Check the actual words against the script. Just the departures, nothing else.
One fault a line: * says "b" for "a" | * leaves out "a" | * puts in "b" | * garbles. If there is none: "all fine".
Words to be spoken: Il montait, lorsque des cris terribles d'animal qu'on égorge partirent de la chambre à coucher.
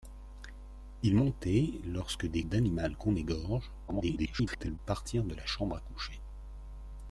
* leaves out "cris terribles"
* garbles